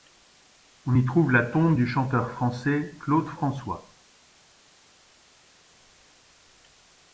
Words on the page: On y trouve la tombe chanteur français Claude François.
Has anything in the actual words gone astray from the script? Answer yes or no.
yes